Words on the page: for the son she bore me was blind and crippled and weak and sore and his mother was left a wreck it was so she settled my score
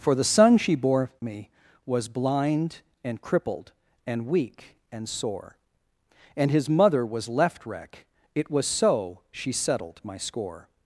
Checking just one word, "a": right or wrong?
wrong